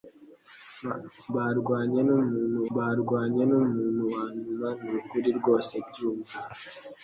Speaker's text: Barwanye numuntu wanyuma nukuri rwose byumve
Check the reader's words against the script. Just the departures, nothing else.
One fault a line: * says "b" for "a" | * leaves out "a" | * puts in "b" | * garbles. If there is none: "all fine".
* puts in "barwanye numuntu"